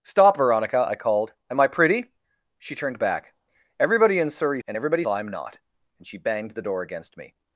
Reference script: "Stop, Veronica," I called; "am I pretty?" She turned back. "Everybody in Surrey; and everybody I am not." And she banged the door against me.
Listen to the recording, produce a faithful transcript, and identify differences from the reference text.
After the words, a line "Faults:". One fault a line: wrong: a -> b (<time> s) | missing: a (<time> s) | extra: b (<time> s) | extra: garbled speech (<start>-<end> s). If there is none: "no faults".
"Stop, Veronica," I called; "am I pretty?" She turned back. "Everybody in Surrey; and everybody I am not." And she banged the door against me.
Faults:
no faults